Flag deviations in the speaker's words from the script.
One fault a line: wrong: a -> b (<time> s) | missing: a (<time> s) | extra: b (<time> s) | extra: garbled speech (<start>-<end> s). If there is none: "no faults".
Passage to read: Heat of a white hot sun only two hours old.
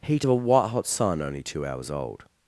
no faults